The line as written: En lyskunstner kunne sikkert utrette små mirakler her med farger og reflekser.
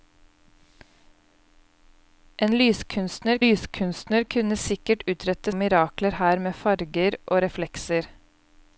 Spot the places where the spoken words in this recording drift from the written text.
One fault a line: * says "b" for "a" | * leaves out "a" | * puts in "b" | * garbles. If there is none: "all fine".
* puts in "lyskunstner"
* leaves out "små"